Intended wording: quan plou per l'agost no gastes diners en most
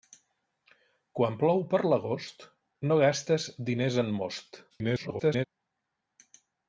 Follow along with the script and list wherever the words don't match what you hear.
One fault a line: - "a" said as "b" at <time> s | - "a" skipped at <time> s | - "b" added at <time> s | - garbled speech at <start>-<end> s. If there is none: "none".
- garbled speech at 4.7-5.4 s